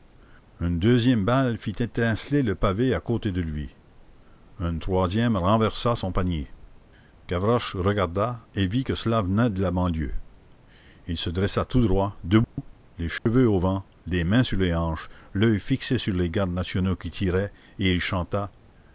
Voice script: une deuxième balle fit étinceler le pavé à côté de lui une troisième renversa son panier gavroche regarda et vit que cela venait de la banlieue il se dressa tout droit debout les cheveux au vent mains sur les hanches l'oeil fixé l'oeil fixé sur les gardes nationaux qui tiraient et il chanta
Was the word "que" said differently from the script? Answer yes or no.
no